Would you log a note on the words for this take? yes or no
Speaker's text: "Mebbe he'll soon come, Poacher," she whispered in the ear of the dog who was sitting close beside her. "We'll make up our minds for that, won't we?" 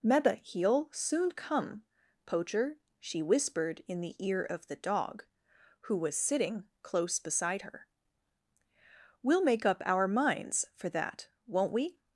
no